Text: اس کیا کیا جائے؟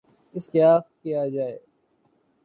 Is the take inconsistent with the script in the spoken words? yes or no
no